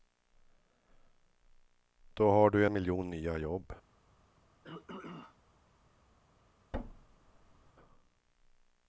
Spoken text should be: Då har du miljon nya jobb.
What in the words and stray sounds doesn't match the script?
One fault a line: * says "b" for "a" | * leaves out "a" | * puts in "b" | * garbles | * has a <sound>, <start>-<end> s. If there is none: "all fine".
* has a throat clearing, 4.6-5.4 s
* has a thud, 6.7-7.7 s